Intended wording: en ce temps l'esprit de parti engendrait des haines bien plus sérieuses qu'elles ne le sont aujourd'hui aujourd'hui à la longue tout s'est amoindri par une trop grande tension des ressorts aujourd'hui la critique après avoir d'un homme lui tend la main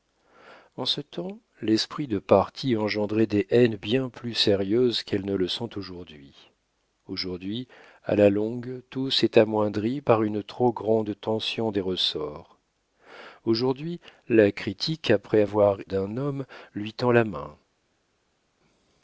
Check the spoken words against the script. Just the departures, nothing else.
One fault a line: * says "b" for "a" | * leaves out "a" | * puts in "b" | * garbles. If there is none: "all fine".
all fine